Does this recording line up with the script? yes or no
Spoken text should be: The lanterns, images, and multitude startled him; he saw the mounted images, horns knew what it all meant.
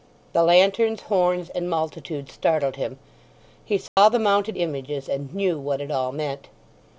no